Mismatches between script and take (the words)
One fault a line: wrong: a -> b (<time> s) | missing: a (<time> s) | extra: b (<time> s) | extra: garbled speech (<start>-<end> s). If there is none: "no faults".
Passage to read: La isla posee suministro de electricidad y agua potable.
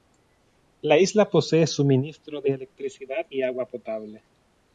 no faults